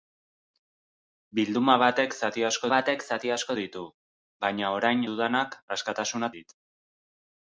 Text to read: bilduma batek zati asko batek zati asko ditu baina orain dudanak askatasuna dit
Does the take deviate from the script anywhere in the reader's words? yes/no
no